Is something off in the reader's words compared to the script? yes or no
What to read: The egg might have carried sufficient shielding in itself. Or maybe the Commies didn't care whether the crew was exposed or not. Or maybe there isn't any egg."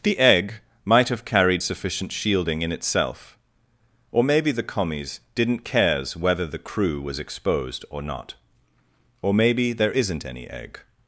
yes